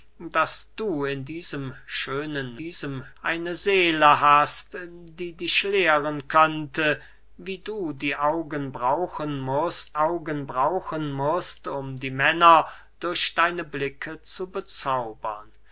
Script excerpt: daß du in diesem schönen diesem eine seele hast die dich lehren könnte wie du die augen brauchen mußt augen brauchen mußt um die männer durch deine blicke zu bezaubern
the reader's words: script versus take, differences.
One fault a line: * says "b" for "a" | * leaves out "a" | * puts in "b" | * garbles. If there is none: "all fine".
all fine